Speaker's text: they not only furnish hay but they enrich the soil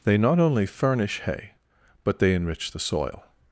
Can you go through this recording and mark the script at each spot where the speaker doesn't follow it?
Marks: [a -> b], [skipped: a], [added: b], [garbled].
they not only furnish hay but they enrich the soil